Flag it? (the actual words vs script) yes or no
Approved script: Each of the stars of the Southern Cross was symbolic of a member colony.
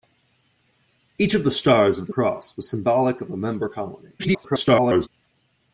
yes